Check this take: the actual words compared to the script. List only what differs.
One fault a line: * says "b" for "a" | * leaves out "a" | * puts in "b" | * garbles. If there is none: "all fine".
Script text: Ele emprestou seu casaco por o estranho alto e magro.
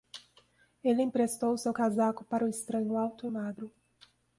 * says "para" for "por"